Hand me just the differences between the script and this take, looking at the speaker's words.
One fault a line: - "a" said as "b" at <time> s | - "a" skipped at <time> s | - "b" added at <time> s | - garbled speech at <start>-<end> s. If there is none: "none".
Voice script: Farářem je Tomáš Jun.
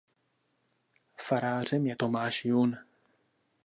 none